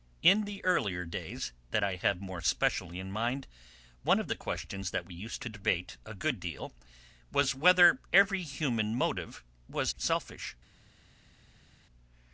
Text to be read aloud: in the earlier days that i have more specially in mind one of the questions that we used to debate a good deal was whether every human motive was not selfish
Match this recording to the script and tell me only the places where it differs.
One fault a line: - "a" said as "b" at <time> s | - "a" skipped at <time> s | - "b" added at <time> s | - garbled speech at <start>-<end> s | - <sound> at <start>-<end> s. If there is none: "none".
- "not" skipped at 9.9 s